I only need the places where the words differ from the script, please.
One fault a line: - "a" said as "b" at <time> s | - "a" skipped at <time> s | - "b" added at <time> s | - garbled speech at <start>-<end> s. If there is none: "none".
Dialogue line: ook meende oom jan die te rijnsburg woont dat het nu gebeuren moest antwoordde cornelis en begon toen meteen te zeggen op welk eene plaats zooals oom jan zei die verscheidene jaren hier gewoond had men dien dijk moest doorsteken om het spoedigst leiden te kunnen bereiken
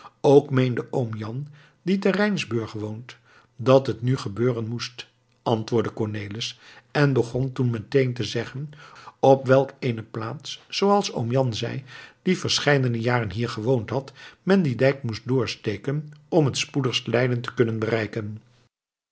none